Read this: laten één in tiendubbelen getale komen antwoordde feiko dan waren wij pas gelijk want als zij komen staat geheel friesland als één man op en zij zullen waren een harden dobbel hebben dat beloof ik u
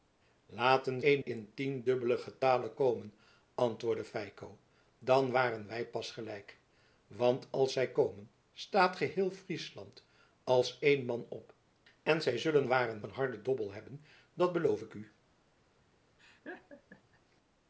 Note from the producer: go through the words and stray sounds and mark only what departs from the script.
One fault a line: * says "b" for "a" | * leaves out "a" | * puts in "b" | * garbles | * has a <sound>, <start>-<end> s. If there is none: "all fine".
* has a laugh, 16.2-17.2 s